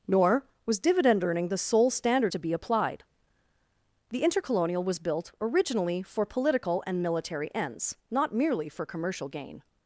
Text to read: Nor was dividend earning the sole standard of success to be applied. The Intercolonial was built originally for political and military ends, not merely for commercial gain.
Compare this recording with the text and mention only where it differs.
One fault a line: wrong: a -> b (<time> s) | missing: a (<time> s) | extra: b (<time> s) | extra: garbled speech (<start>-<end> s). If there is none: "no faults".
missing: of success (2.3 s)